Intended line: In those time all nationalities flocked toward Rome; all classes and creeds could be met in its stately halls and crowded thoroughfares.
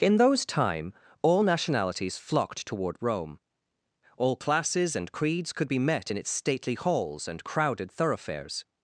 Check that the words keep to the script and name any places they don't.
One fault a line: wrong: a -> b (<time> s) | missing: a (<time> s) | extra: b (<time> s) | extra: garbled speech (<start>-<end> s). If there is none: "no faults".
no faults